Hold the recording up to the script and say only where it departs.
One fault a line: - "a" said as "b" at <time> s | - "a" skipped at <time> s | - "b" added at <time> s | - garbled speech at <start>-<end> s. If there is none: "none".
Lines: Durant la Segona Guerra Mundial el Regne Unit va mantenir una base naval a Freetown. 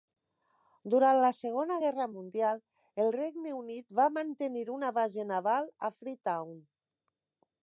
none